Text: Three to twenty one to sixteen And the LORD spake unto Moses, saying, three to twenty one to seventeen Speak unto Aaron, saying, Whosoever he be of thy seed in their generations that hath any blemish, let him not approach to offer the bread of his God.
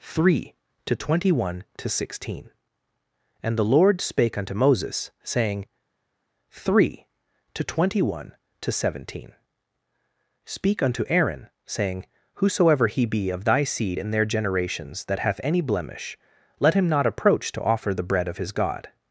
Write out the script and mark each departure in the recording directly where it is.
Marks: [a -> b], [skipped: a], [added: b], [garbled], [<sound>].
Three to twenty one to sixteen And the LORD spake unto Moses, saying, three to twenty one to seventeen Speak unto Aaron, saying, Whosoever he be of thy seed in their generations that hath any blemish, let him not approach to offer the bread of his God.